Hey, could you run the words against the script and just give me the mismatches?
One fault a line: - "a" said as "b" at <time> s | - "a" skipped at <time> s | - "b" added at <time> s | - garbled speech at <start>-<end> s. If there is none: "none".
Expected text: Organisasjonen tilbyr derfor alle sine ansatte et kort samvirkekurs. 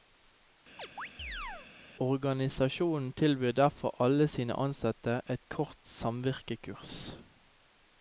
none